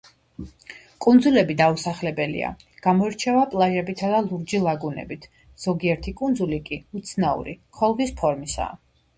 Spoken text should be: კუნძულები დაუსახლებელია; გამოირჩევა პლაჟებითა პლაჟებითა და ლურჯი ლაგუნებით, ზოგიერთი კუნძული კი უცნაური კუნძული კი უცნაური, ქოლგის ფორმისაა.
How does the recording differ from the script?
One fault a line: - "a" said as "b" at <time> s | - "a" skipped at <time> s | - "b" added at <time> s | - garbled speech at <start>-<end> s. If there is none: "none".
- "პლაჟებითა" skipped at 4.1 s
- "კუნძული კი უცნაური" skipped at 7.6 s